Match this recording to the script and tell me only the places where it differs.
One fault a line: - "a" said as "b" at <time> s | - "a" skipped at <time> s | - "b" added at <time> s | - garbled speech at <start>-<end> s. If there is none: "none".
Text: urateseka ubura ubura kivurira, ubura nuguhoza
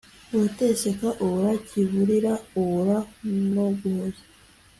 - "ubura" skipped at 1.5 s